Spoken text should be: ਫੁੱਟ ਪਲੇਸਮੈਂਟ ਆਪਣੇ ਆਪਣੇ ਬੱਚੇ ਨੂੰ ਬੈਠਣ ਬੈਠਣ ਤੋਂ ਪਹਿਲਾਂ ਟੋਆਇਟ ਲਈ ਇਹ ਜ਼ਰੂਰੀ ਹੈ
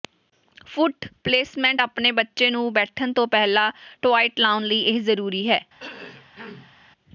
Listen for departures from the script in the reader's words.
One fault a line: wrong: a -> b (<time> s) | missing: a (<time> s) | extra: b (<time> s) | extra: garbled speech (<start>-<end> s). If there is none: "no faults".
missing: ਆਪਣੇ (2.1 s)
missing: ਬੈਠਣ (3.1 s)
extra: ਲਾਉਣ (4.4 s)